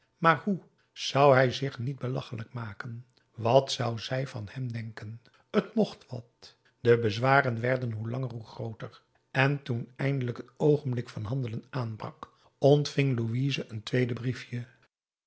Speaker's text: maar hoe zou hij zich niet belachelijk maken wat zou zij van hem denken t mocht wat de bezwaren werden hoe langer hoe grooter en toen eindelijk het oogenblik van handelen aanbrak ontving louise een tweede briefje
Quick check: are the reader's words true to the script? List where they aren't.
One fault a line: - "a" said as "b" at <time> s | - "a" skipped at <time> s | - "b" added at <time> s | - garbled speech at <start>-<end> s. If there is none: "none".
none